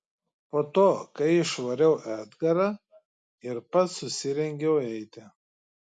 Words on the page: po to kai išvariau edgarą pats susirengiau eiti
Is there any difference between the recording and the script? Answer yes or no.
yes